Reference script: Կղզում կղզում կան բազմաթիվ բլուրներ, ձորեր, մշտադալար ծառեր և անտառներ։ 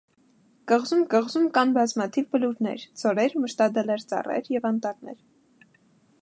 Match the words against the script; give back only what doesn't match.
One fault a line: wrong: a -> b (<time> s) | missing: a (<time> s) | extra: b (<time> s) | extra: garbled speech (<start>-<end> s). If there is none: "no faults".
no faults